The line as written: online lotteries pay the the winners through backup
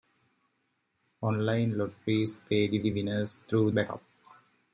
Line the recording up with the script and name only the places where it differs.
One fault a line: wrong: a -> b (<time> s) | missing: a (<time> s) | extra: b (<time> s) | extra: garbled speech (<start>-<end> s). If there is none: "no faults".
no faults